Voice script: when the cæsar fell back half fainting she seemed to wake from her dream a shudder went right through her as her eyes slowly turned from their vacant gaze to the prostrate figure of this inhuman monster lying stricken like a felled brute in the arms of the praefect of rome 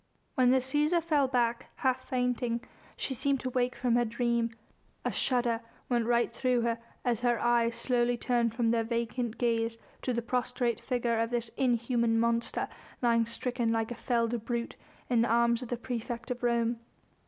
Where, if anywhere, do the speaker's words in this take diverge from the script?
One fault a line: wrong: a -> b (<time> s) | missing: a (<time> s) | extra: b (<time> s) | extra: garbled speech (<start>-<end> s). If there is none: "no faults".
no faults